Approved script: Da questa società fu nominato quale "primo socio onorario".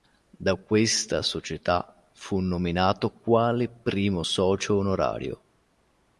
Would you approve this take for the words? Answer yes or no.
yes